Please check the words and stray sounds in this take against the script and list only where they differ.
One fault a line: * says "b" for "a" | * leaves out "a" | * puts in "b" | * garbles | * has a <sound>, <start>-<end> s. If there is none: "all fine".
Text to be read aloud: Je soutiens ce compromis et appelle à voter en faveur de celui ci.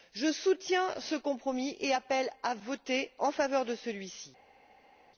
all fine